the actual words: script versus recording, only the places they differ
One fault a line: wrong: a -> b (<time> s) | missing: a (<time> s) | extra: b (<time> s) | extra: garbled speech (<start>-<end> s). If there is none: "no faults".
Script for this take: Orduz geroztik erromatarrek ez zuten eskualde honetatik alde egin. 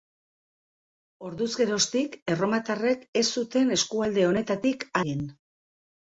missing: alde (4.9 s)